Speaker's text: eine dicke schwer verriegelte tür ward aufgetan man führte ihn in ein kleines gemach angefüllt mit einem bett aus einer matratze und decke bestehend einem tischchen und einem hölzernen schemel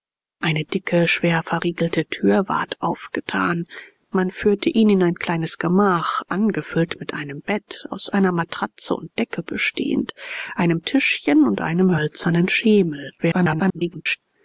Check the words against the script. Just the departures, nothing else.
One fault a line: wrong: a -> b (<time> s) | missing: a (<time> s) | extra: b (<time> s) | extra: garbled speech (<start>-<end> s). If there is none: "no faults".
extra: garbled speech (13.2-14.2 s)